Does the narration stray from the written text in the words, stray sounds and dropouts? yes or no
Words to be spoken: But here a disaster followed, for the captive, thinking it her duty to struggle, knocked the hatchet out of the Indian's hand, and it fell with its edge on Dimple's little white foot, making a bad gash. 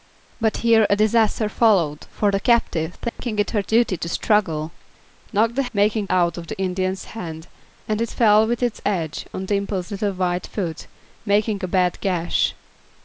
yes